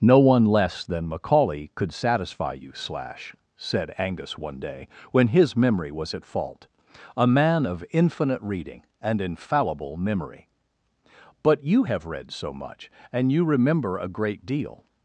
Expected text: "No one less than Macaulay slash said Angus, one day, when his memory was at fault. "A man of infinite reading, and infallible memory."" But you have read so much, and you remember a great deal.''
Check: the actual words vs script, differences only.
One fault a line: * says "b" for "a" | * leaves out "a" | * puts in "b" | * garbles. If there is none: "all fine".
* puts in "could satisfy you"